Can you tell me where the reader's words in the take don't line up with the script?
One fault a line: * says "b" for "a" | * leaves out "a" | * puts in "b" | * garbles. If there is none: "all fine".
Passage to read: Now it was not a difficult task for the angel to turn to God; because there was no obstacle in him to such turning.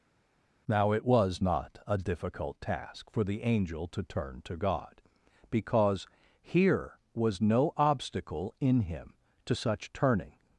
* says "here" for "there"